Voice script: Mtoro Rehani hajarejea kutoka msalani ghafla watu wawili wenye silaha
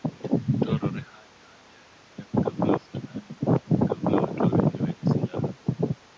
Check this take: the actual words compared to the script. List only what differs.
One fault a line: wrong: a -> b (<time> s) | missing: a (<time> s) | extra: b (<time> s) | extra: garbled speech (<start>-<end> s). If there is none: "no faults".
wrong: kutoka -> ghafla (2.4 s)